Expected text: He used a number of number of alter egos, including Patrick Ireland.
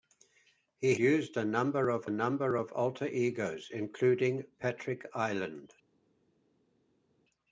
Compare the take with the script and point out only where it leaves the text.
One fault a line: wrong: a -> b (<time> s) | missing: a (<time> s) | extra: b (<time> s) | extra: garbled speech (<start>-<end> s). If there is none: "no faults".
no faults